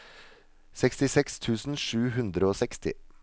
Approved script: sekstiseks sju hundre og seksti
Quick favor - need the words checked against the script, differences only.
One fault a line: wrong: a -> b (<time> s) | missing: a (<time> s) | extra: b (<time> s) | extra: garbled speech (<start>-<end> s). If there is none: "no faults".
extra: tusen (1.4 s)